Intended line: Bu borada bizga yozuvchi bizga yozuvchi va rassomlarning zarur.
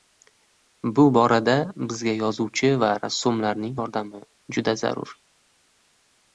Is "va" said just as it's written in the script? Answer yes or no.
no